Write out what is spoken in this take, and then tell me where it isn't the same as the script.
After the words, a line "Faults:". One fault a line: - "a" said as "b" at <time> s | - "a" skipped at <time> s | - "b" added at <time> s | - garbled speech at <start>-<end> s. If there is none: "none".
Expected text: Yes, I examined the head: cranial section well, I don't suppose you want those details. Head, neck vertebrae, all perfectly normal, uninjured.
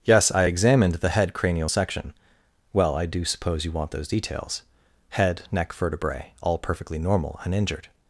Yes, I examined the head: cranial section well, I do suppose you want those details. Head, neck vertebrae, all perfectly normal, uninjured.
Faults:
- "don't" said as "do" at 3.1 s